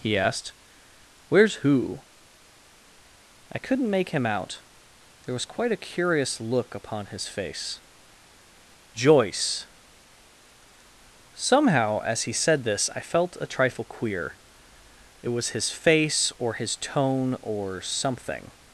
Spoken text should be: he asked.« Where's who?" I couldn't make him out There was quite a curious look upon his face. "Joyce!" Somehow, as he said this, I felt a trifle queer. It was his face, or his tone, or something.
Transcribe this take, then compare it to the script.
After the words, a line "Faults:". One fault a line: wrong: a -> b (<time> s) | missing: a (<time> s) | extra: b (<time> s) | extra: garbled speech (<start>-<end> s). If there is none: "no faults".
he asked.« Where's who?" I couldn't make him out There was quite a curious look upon his face. "Joyce!" Somehow, as he said this, I felt a trifle queer. It was his face, or his tone, or something.
Faults:
no faults